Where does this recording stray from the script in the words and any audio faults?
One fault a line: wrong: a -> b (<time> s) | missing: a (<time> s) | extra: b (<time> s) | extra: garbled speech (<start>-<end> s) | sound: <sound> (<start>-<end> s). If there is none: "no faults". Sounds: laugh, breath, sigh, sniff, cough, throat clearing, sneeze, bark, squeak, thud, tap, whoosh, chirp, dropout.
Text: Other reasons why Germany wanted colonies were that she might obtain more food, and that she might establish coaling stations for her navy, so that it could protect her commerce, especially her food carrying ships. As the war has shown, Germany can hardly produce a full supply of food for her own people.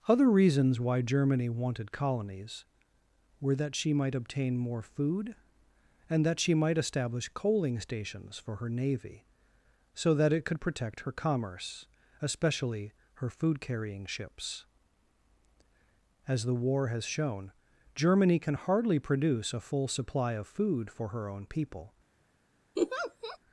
sound: laugh (22.8-23.4 s)